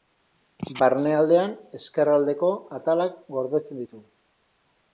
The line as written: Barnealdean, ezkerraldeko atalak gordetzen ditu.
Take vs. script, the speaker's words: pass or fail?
pass